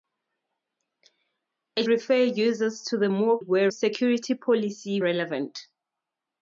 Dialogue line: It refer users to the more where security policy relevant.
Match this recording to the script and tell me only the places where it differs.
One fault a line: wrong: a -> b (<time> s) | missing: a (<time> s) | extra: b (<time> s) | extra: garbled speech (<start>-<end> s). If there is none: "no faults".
no faults